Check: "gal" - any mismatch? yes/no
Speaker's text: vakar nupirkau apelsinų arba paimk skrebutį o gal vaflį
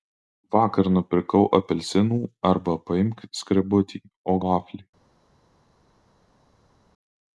yes